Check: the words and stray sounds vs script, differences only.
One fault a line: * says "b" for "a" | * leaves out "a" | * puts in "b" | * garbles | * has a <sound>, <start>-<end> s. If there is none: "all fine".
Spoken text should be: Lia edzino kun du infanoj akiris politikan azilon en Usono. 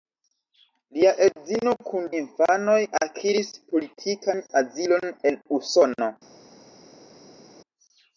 * leaves out "du"